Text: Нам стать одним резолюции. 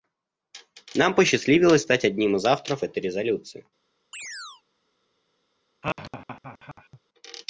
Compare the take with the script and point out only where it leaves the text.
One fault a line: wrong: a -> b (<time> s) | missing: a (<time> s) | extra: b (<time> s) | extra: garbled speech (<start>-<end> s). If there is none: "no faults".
extra: посчастливилось (1.1 s)
extra: из авторов этой (2.4 s)